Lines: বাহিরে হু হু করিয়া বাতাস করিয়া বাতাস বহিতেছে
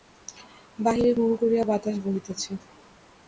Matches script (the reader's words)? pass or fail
fail